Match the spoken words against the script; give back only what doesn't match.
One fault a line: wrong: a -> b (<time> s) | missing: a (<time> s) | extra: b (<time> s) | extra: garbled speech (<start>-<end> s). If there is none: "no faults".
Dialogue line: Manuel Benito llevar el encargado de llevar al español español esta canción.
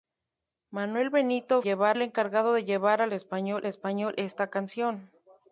no faults